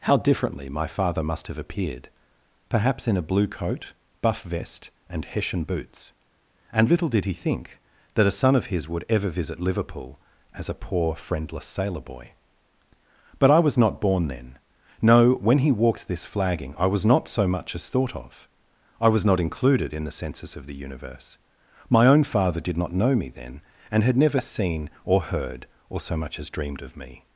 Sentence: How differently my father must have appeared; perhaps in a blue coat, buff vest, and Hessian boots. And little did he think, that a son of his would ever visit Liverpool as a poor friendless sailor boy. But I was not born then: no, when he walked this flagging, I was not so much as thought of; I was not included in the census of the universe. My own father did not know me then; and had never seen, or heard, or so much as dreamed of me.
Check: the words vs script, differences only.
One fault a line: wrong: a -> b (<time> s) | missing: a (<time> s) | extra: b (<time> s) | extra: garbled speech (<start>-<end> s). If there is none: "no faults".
no faults